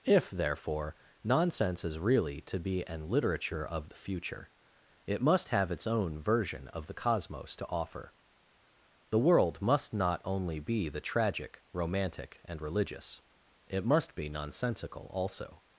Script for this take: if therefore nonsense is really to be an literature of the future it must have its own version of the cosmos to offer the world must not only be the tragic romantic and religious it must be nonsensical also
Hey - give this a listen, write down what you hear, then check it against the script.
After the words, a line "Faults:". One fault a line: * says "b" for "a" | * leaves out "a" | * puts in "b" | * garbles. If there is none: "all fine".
if therefore nonsense is really to be an literature of the future it must have its own version of the cosmos to offer the world must not only be the tragic romantic and religious it must be nonsensical also
Faults:
all fine